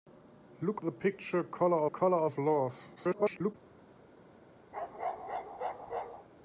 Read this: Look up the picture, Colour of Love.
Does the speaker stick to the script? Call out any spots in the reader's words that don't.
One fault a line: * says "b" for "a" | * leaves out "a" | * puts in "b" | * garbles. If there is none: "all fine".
* leaves out "up"
* puts in "Colour"
* garbles